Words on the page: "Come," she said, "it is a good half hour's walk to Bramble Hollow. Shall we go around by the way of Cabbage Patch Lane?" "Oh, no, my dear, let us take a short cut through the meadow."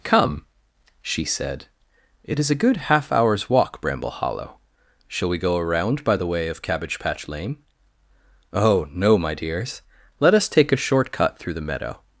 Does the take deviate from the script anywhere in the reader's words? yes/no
yes